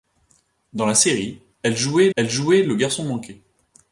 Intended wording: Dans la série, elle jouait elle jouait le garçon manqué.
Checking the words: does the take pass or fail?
pass